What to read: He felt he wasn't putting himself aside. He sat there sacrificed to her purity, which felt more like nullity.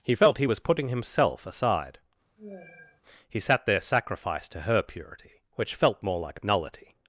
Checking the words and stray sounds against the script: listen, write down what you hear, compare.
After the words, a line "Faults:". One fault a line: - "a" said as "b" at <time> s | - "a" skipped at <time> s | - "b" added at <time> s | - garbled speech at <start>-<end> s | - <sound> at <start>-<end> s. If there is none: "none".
He felt he was putting himself aside. He sat there sacrificed to her purity, which felt more like nullity.
Faults:
- "wasn't" said as "was" at 0.4 s
- sigh at 2.4-3.0 s